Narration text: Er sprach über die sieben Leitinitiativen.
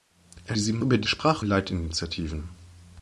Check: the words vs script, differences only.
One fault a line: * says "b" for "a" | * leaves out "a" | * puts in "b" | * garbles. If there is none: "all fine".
* says "sieben" for "sprach"
* says "sprach" for "sieben"